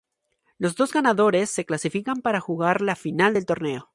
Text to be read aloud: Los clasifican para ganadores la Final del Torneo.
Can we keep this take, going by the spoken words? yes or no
no